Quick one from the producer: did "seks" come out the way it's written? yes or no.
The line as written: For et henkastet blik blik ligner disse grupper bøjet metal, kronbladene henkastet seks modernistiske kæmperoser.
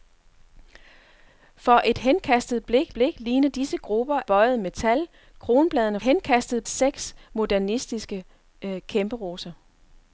yes